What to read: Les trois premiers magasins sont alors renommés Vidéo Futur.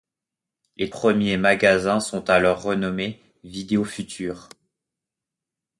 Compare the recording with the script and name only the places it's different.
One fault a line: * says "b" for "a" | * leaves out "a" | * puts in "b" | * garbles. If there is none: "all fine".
* leaves out "trois"